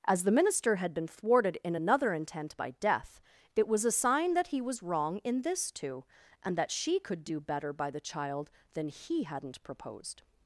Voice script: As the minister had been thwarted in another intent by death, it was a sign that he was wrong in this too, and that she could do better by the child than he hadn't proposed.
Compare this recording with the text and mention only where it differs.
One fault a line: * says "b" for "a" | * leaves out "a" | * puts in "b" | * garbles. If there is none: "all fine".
all fine